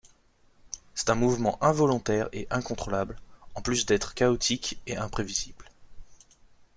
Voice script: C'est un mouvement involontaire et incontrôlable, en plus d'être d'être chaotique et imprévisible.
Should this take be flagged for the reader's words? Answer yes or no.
yes